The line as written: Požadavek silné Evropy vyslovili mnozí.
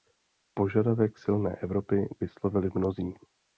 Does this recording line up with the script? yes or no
yes